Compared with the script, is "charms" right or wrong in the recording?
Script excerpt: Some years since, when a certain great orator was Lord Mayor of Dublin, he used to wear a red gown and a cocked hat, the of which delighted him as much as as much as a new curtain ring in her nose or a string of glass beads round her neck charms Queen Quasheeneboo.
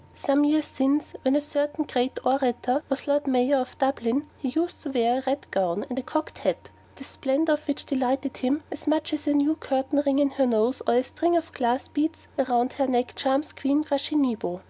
right